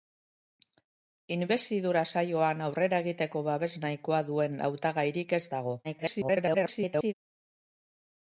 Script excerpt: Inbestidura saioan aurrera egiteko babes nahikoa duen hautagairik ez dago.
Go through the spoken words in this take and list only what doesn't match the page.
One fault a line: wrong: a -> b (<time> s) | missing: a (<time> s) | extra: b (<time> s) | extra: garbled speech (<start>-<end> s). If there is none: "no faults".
extra: garbled speech (5.8-7.1 s)